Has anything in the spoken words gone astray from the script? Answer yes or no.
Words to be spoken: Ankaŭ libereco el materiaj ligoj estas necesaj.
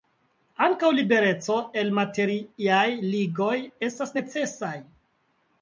no